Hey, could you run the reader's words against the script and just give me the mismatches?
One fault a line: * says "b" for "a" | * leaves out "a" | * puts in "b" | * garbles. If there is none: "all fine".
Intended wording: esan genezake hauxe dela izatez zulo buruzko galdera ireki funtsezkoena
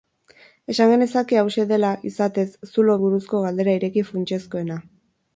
all fine